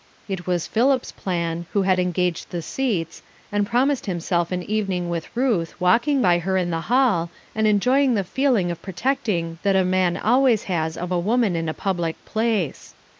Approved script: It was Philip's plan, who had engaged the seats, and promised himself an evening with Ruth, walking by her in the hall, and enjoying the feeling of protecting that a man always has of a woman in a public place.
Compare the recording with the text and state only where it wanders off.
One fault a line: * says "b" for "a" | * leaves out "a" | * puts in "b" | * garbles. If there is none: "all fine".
all fine